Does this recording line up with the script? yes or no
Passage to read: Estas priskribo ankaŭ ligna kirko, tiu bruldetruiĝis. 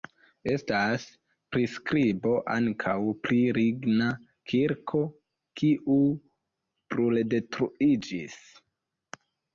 no